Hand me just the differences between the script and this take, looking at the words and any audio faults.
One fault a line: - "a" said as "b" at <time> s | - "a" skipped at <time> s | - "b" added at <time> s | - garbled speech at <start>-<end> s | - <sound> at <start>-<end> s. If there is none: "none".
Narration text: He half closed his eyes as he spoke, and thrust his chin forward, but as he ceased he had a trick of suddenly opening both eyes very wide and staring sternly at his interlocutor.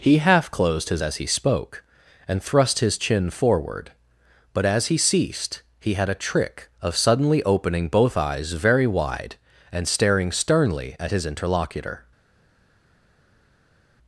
- "eyes" skipped at 1.0 s